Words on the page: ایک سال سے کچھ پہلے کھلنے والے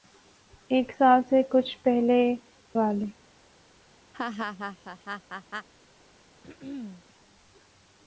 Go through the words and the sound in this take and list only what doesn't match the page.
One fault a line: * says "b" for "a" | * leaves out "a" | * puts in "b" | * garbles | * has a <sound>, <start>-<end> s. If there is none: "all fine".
* leaves out "کھلنے"
* has a laugh, 4.1-5.7 s
* has a throat clearing, 6.4-7.0 s